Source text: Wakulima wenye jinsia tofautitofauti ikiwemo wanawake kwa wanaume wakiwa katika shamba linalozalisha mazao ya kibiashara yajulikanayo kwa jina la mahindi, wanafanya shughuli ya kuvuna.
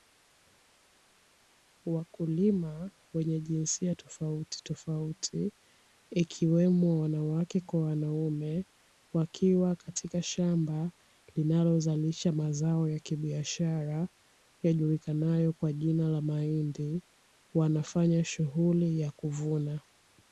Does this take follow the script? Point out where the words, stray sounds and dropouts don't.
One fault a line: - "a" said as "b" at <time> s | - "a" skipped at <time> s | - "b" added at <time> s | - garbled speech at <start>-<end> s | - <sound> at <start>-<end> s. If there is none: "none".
none